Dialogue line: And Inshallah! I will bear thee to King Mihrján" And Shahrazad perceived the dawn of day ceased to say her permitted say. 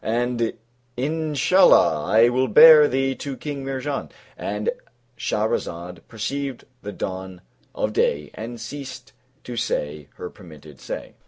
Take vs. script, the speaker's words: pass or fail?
fail